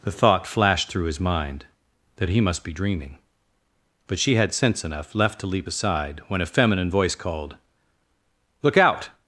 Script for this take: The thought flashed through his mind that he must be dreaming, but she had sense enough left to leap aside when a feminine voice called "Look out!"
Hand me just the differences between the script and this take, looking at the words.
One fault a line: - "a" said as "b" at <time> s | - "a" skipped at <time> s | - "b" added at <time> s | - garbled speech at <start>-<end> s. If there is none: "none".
none